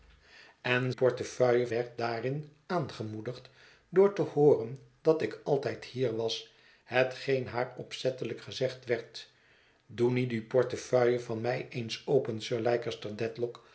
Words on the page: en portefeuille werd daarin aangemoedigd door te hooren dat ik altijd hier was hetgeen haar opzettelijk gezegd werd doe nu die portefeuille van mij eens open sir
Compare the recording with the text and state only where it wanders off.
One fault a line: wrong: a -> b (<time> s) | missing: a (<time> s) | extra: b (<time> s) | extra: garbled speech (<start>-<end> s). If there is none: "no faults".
no faults